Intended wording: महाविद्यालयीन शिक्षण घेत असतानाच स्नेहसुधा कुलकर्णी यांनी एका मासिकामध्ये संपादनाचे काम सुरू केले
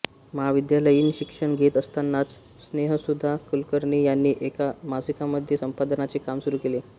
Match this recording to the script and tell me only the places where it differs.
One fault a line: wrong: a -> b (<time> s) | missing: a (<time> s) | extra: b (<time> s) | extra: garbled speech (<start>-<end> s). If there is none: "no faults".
no faults